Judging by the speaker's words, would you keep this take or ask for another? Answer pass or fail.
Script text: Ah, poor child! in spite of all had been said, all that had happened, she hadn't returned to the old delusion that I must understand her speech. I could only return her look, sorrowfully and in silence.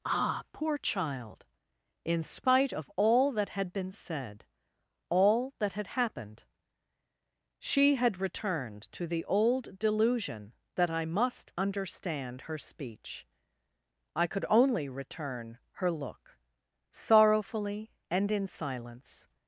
fail